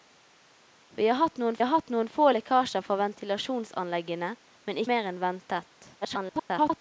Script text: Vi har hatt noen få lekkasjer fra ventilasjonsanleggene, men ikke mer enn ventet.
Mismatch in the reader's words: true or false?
true